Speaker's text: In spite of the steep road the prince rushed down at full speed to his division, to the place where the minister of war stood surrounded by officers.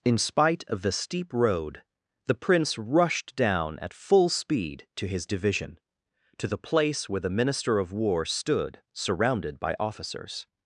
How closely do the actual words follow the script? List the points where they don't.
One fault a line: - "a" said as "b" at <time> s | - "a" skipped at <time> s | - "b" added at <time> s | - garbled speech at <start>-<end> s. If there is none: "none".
none